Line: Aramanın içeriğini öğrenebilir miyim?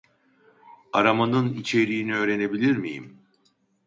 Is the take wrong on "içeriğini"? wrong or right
right